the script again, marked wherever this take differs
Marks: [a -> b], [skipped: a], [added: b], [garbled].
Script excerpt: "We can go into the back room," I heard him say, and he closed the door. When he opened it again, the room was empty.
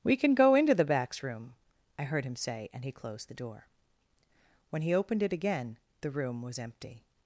"We can go into the [back -> backs] room," I heard him say, and he closed the door. When he opened it again, the room was empty.